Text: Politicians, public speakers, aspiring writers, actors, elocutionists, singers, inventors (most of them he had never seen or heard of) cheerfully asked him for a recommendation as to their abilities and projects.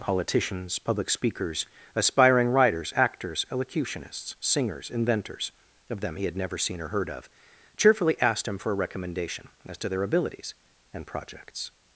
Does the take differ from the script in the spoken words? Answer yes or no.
yes